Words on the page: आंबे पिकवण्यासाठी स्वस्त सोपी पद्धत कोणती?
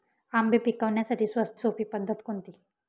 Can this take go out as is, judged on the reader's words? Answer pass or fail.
pass